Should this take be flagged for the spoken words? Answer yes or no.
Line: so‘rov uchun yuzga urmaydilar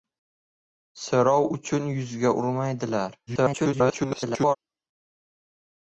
yes